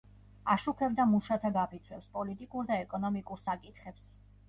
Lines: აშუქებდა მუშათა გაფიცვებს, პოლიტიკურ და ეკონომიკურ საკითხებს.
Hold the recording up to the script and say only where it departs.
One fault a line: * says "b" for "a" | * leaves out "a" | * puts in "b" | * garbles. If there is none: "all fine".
all fine